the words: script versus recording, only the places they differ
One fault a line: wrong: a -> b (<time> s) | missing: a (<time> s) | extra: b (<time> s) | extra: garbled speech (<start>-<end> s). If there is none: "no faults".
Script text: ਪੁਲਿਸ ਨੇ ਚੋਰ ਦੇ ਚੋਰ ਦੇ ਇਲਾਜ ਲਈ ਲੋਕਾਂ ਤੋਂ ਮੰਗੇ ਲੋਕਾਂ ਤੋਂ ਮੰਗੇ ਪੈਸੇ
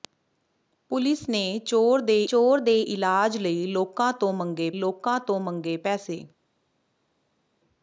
no faults